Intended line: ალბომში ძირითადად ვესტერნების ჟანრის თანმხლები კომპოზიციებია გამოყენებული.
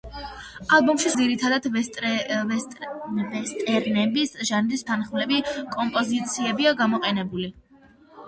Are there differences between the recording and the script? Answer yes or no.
no